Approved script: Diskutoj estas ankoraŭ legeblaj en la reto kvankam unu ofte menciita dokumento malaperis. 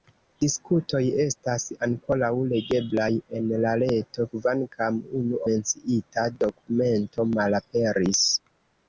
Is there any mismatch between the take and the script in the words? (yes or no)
yes